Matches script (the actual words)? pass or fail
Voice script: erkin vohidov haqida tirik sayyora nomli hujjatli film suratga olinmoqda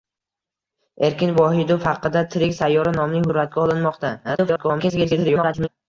fail